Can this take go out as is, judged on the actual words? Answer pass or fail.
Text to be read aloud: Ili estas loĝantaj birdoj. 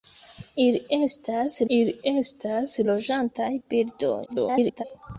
fail